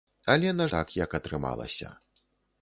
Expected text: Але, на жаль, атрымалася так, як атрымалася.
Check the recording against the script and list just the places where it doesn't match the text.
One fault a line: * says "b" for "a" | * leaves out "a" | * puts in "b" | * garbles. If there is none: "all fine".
* leaves out "жаль атрымалася"